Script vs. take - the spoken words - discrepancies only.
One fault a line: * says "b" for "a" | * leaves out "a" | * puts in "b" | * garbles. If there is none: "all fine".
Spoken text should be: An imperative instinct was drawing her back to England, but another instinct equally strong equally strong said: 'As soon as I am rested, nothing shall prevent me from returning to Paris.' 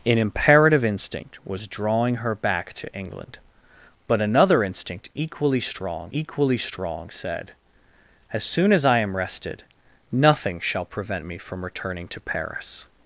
all fine